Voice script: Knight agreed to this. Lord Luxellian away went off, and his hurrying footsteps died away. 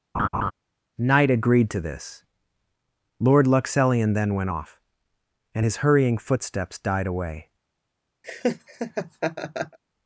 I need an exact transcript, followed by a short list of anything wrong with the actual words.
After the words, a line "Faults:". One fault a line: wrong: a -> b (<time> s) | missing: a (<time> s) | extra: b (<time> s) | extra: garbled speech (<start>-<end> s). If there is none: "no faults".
Knight agreed to this. Lord Luxellian then went off, and his hurrying footsteps died away.
Faults:
wrong: away -> then (4.1 s)